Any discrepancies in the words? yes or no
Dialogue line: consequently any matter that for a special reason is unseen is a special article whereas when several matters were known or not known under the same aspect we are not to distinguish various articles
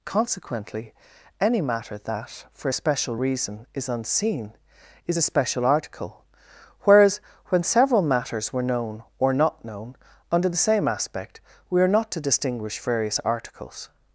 no